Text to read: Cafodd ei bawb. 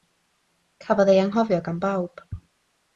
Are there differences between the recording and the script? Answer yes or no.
yes